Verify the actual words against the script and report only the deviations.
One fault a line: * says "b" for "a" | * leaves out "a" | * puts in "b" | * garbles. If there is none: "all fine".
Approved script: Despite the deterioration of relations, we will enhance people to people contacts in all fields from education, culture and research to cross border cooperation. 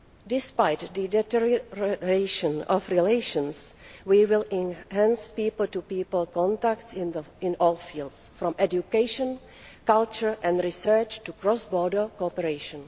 all fine